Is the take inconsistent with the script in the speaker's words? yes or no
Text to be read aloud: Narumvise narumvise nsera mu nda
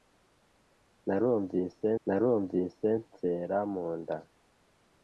no